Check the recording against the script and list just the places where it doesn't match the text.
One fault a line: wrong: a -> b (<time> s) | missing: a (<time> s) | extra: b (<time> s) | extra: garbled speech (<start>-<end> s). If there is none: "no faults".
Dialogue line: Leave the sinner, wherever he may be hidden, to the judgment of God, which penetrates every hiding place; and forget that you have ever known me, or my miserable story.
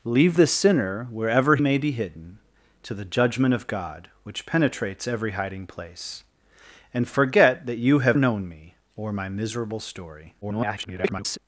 missing: he (1.6 s)
missing: ever (8.2 s)
extra: garbled speech (10.4-11.4 s)